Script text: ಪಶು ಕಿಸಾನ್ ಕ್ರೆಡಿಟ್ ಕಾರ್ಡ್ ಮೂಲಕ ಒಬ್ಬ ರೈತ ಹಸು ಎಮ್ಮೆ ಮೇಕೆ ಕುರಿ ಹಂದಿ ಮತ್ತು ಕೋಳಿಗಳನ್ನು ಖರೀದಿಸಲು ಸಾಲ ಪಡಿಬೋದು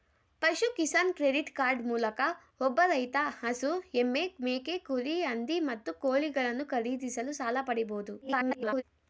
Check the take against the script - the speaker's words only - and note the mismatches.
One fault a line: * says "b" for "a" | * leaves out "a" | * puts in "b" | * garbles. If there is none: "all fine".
* garbles